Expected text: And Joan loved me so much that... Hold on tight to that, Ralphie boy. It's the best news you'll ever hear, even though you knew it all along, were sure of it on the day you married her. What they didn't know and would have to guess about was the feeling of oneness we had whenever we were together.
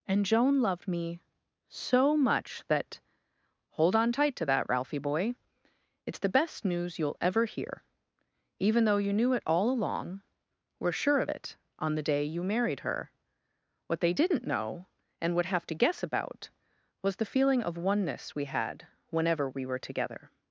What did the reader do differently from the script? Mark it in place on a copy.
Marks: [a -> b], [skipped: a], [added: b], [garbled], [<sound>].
And Joan loved me so much that... Hold on tight to that, Ralphie boy. It's the best news you'll ever hear, even though you knew it all along, were sure of it on the day you married her. What they didn't know and would have to guess about was the feeling of oneness we had whenever we were together.